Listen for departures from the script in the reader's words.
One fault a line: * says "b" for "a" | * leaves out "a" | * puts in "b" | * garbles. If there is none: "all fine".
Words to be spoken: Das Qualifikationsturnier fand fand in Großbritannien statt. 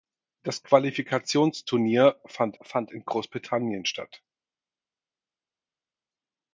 all fine